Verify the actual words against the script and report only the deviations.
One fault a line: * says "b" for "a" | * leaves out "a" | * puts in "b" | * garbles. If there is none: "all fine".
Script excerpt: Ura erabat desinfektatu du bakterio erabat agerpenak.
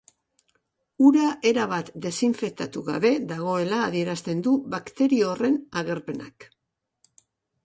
* puts in "gabe dagoela adierazten"
* says "horren" for "erabat"